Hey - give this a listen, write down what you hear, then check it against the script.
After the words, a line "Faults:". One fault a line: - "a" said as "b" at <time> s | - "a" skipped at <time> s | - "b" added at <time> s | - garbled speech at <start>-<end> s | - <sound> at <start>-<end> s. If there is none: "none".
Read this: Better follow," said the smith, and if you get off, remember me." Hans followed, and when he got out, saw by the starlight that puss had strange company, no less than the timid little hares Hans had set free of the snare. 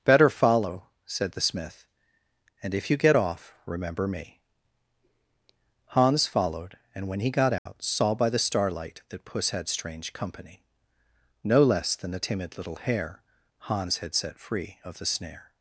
Better follow," said the smith, and if you get off, remember me." Hans followed, and when he got out, saw by the starlight that puss had strange company, no less than the timid little hare Hans had set free of the snare.
Faults:
- dropout at 7.6-7.7 s
- "hares" said as "hare" at 12.8 s